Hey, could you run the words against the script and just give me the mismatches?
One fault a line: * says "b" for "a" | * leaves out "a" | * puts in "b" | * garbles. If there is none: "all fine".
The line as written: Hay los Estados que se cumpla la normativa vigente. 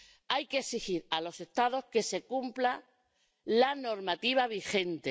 * puts in "que exigir a"